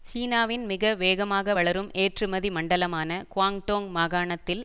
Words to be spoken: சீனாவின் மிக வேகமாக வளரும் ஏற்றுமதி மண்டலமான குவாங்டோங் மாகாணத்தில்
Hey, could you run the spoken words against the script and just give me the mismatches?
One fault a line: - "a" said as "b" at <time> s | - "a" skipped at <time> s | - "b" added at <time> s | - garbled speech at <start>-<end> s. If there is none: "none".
none